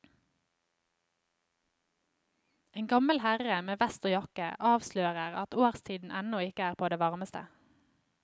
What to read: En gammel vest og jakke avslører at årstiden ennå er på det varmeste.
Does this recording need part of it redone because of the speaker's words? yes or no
yes